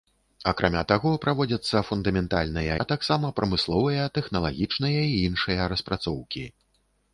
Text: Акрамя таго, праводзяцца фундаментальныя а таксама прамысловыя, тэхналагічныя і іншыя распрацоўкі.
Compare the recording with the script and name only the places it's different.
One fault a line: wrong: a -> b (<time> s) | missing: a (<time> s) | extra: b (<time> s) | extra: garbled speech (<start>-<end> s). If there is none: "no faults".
no faults